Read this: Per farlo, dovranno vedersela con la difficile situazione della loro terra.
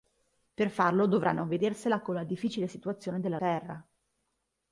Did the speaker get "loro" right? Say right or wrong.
wrong